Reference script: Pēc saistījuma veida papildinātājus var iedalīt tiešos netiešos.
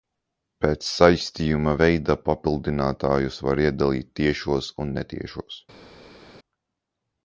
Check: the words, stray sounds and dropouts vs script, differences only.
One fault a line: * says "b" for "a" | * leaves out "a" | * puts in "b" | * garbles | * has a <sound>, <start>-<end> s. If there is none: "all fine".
* puts in "un"